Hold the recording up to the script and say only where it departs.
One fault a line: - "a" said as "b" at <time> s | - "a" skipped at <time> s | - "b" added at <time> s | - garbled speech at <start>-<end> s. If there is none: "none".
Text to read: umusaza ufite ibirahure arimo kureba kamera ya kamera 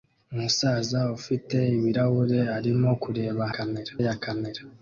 none